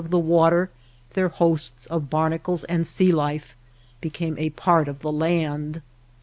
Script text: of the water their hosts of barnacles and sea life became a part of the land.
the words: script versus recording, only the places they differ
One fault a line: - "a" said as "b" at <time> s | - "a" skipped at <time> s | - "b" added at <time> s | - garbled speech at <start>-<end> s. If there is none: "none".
none